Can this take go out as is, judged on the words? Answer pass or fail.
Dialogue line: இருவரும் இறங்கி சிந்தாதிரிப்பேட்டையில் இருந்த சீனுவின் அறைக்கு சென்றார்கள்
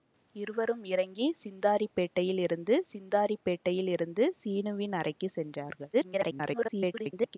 fail